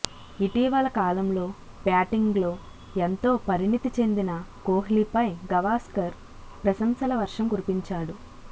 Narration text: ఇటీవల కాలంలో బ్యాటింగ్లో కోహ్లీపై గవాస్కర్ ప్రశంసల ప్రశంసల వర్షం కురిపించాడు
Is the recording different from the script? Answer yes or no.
yes